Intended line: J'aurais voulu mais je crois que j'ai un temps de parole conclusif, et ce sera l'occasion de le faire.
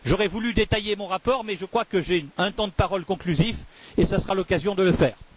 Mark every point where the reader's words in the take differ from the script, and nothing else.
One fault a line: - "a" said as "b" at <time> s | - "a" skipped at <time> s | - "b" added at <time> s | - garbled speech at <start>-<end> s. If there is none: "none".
- "détailler mon rapport" added at 0.5 s